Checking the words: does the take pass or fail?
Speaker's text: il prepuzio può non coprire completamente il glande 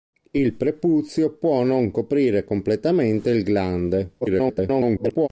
fail